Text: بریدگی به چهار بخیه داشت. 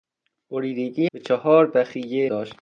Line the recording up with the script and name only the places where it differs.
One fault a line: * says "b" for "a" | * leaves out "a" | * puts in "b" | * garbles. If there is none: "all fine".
all fine